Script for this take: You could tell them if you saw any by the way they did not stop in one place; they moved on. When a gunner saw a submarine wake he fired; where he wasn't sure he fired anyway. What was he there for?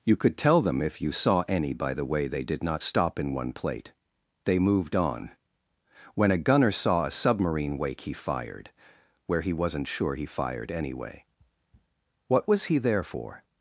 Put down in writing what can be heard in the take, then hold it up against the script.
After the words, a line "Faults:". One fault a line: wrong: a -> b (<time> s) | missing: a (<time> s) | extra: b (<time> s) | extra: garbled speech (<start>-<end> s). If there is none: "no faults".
You could tell them if you saw any by the way they did not stop in one plate; they moved on. When a gunner saw a submarine wake he fired; where he wasn't sure he fired anyway. What was he there for?
Faults:
wrong: place -> plate (3.5 s)